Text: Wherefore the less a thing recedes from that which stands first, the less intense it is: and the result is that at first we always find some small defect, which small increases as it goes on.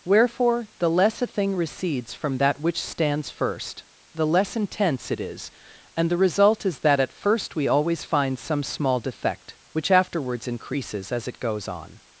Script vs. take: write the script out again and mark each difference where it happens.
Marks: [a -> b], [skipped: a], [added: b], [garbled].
Wherefore the less a thing recedes from that which stands first, the less intense it is: and the result is that at first we always find some small defect, which [small -> afterwards] increases as it goes on.